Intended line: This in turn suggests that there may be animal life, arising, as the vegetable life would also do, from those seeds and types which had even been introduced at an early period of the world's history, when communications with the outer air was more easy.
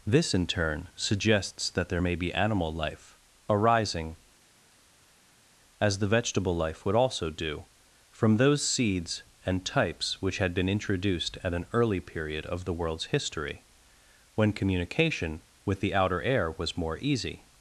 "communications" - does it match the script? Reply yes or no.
no